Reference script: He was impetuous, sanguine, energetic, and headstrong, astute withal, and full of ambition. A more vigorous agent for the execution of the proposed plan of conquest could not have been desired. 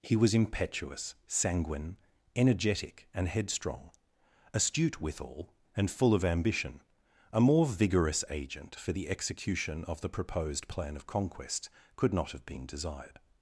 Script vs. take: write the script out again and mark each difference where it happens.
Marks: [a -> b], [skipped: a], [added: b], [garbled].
He was impetuous, sanguine, energetic, and headstrong, astute withal, and full of ambition. A more vigorous agent for the execution of the proposed plan of conquest could not have been desired.